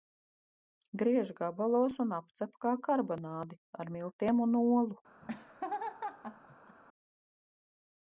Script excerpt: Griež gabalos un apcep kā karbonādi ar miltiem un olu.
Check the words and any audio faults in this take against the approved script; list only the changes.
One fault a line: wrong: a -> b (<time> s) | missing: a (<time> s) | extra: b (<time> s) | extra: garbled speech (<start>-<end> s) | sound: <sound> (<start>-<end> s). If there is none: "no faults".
sound: laugh (5.2-6.8 s)